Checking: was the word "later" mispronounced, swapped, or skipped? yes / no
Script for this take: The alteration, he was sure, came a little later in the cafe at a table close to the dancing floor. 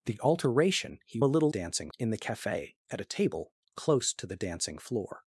yes